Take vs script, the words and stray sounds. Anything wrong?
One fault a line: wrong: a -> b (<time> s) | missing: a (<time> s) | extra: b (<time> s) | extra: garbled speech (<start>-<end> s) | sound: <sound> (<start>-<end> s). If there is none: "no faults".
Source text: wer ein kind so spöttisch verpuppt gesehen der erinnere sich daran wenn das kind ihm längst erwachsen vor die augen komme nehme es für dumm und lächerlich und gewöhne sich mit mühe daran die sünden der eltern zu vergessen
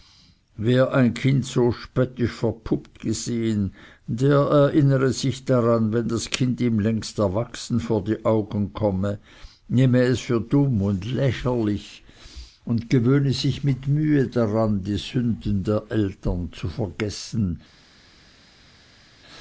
no faults